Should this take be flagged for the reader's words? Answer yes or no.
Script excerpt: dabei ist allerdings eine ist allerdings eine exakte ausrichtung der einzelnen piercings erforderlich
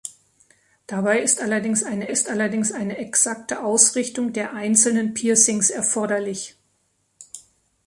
no